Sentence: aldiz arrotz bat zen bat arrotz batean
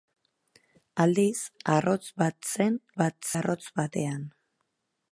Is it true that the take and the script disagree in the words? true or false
false